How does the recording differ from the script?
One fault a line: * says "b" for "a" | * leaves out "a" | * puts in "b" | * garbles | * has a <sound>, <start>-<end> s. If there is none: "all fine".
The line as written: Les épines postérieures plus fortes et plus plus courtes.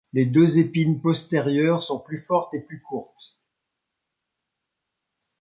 * puts in "deux"
* puts in "sont"
* leaves out "plus"